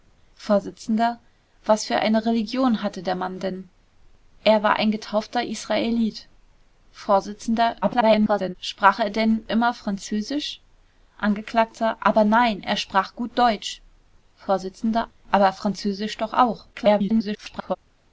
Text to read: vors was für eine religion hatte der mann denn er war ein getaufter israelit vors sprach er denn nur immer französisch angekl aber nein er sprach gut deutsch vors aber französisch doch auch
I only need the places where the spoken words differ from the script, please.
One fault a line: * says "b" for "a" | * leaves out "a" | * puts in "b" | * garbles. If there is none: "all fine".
* garbles
* leaves out "nur"
* garbles